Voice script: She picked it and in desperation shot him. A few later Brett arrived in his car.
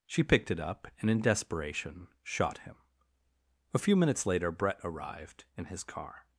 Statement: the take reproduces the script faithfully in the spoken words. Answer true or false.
false